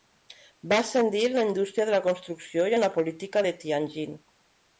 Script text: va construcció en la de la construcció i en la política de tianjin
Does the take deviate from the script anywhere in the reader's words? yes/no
yes